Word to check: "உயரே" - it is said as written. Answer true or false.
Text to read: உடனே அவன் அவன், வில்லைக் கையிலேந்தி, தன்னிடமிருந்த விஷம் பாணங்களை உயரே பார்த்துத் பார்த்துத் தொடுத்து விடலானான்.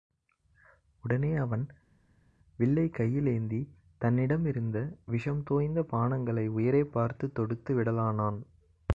true